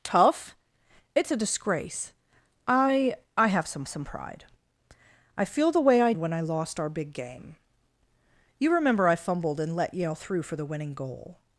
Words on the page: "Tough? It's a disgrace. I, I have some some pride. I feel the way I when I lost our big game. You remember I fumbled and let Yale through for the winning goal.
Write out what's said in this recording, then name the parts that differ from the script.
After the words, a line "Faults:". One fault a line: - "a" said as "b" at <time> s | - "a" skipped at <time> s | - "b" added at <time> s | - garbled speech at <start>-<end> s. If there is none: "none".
"Tough? It's a disgrace. I, I have some some pride. I feel the way I when I lost our big game. You remember I fumbled and let Yale through for the winning goal.
Faults:
none